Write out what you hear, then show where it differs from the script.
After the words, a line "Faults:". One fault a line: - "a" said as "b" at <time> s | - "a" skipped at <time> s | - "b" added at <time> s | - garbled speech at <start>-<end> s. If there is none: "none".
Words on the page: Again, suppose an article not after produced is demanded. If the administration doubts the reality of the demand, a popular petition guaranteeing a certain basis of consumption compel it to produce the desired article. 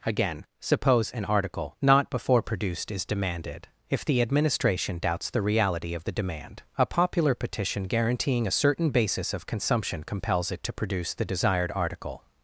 Again, suppose an article not before produced is demanded. If the administration doubts the reality of the demand, a popular petition guaranteeing a certain basis of consumption compels it to produce the desired article.
Faults:
- "after" said as "before" at 2.1 s
- "compel" said as "compels" at 10.0 s